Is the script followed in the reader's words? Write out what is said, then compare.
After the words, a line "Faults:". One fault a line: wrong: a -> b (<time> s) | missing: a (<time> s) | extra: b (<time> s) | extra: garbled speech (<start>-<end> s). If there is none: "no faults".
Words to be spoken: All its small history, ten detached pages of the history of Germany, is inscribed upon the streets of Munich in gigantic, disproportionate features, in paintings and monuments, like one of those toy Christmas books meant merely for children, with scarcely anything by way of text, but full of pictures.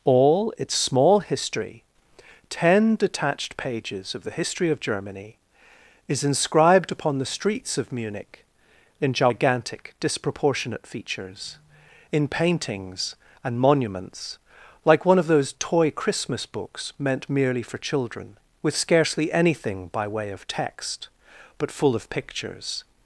All its small history, ten detached pages of the history of Germany, is inscribed upon the streets of Munich in gigantic, disproportionate features, in paintings and monuments, like one of those toy Christmas books meant merely for children, with scarcely anything by way of text, but full of pictures.
Faults:
no faults